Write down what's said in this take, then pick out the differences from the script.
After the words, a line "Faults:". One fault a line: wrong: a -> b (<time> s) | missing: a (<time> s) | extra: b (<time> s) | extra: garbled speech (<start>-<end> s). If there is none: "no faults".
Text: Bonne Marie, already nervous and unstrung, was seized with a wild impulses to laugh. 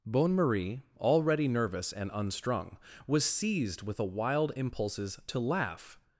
Bonne Marie, already nervous and unstrung, was seized with a wild impulses to laugh.
Faults:
no faults